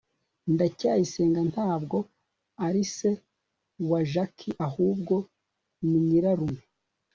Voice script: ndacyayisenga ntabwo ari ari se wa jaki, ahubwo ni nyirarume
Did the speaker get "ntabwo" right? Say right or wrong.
right